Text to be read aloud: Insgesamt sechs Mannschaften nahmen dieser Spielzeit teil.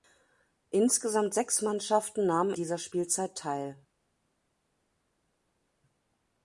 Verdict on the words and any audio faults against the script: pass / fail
pass